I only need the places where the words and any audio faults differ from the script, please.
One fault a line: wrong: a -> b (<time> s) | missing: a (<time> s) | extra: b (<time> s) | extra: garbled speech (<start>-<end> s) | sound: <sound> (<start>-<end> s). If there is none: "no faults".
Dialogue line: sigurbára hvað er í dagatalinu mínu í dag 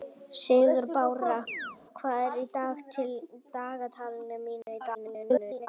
sound: chirp (1.5-1.8 s)
sound: dropout (4.6-4.7 s)
extra: garbled speech (4.9-5.7 s)